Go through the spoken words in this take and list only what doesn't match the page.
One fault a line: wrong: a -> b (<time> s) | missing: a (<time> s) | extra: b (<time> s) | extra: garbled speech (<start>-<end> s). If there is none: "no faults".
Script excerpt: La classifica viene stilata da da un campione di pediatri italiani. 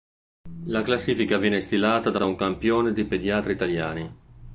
no faults